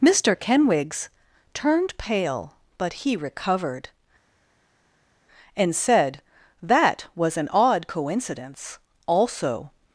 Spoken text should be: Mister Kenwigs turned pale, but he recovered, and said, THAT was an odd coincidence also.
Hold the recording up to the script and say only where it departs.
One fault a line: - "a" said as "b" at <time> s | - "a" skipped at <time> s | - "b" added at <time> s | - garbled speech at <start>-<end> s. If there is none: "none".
none